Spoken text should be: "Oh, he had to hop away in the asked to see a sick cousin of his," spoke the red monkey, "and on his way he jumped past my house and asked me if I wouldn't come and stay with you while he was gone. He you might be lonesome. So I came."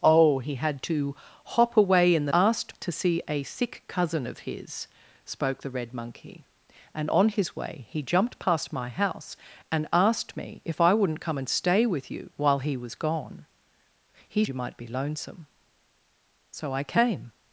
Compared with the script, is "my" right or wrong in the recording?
right